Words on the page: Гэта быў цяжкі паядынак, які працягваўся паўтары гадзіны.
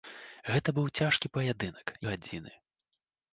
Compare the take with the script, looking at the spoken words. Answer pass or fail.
fail